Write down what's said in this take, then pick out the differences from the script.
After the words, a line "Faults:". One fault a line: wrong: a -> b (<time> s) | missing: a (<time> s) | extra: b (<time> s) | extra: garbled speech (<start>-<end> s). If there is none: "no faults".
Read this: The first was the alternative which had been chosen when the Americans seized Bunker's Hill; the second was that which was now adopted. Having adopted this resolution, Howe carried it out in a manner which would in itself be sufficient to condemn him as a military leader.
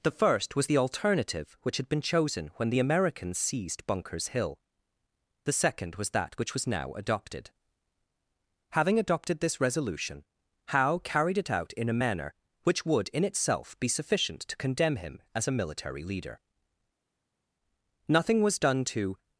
The first was the alternative which had been chosen when the Americans seized Bunker's Hill; the second was that which was now adopted. Having adopted this resolution, Howe carried it out in a manner which would in itself be sufficient to condemn him as a military leader. Nothing was done to
Faults:
extra: Nothing was done to (18.1 s)